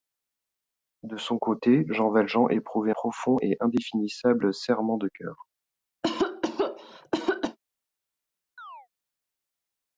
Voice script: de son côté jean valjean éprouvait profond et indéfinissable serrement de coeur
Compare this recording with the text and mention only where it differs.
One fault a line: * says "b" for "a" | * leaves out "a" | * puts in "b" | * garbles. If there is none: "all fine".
all fine